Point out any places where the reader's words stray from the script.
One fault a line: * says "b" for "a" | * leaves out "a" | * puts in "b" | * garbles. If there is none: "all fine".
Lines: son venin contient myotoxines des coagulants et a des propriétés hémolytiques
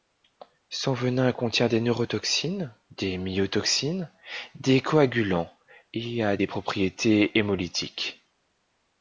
* puts in "des neurotoxines des"